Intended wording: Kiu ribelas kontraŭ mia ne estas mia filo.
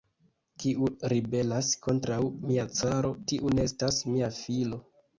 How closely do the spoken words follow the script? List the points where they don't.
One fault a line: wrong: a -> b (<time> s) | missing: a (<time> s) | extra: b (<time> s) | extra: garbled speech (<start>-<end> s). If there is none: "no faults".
extra: caro tiu (2.8 s)